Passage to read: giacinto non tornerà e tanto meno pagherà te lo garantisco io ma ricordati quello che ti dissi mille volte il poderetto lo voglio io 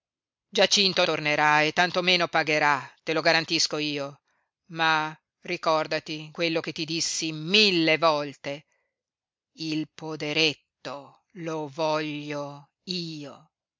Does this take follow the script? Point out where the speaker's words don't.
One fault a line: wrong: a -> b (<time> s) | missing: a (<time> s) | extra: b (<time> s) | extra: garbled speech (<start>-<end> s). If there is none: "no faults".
missing: non (1.1 s)